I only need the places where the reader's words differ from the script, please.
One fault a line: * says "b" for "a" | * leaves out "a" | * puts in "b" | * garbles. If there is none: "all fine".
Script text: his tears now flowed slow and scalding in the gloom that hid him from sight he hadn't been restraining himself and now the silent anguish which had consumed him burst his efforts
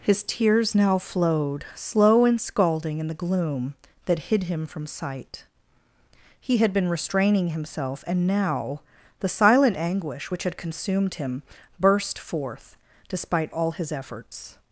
* says "had" for "hadn't"
* puts in "forth despite all"